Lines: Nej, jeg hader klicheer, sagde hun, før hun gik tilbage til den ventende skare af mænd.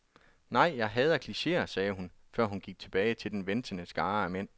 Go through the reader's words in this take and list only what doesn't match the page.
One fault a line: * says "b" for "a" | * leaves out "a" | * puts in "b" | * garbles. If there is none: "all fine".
all fine